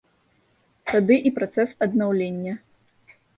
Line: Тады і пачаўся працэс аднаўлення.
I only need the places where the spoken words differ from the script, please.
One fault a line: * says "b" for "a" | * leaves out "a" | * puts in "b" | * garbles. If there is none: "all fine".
* leaves out "пачаўся"